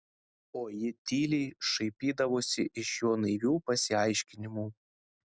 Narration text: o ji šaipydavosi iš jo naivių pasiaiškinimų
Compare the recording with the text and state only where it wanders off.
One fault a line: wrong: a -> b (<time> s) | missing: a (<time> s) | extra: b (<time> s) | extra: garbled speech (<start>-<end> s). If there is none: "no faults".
extra: tyliai (1.1 s)